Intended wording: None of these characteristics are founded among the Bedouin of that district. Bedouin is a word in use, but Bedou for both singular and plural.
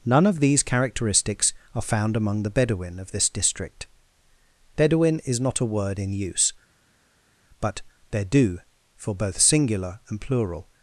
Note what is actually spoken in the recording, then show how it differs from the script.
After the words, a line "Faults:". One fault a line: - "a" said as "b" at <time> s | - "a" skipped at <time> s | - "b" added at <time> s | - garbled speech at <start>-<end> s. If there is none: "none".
None of these characteristics are found among the Bedouin of this district. Bedouin is not a word in use, but Bedou for both singular and plural.
Faults:
- "founded" said as "found" at 1.8 s
- "that" said as "this" at 3.1 s
- "not" added at 5.4 s